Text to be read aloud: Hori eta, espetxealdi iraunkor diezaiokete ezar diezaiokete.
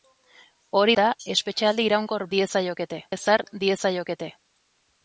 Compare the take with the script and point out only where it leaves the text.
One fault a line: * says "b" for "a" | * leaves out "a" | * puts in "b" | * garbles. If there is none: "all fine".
all fine